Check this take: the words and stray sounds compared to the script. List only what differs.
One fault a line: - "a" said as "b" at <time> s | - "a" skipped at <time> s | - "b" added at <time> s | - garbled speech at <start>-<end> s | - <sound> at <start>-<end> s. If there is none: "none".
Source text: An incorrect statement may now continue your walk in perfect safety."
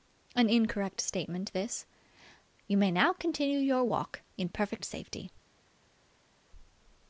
- "this You" added at 1.5 s